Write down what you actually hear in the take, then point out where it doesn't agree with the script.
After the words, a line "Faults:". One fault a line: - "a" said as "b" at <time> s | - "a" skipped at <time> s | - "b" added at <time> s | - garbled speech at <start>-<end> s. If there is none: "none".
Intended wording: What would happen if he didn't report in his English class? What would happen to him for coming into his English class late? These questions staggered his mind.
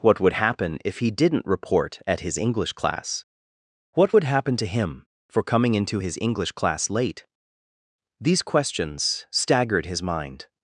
What would happen if he didn't report at his English class? What would happen to him for coming into his English class late? These questions staggered his mind.
Faults:
- "in" said as "at" at 2.1 s